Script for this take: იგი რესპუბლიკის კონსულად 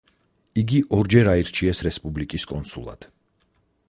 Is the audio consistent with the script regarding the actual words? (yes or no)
no